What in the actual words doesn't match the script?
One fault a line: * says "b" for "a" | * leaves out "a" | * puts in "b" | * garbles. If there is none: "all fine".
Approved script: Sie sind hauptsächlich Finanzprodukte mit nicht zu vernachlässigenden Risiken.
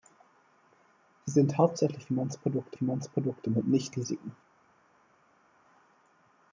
* puts in "Finanzprodukte"
* leaves out "zu vernachlässigenden"